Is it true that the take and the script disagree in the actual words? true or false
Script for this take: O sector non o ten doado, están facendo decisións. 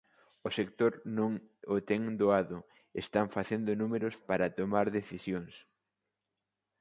true